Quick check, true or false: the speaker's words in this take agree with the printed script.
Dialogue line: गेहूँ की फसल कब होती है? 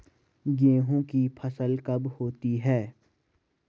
true